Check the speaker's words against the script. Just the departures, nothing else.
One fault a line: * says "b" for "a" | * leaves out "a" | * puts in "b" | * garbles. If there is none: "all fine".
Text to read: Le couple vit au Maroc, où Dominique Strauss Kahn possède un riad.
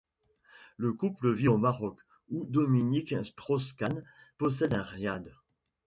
all fine